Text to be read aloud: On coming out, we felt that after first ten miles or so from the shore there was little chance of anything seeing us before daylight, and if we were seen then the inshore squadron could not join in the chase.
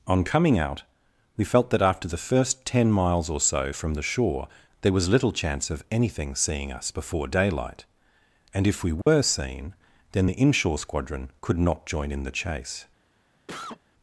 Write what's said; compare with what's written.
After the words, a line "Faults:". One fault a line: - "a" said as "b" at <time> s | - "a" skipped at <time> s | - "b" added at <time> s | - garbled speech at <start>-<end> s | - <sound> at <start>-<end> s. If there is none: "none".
On coming out, we felt that after the first ten miles or so from the shore there was little chance of anything seeing us before daylight, and if we were seen then the inshore squadron could not join in the chase.
Faults:
- "the" added at 2.1 s
- dropout at 9.0-9.1 s
- cough at 13.5-13.8 s